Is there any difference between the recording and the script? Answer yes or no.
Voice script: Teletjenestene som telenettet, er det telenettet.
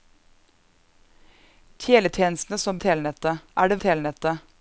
no